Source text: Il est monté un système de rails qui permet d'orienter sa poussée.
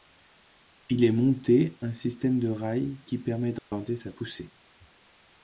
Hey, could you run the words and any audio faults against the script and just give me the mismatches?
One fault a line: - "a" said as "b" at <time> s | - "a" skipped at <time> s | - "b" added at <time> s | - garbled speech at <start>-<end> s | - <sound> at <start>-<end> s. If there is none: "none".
- dropout at 3.6-3.7 s